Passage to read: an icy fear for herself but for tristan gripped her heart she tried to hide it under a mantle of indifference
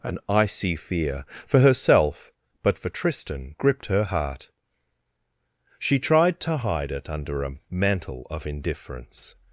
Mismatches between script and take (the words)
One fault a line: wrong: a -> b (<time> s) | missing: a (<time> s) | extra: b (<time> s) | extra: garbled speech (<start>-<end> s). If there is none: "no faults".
no faults